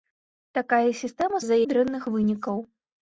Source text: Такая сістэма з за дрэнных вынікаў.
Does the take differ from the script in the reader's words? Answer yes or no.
no